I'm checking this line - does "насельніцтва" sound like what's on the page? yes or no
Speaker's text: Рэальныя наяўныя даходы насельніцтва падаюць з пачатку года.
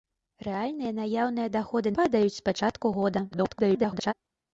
no